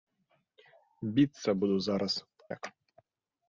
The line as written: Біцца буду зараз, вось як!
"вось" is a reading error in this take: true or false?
true